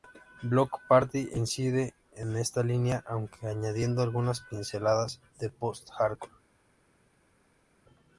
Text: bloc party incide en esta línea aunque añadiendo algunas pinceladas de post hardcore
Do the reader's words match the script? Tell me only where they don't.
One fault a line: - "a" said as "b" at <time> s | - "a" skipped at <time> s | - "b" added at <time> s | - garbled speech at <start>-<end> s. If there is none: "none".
none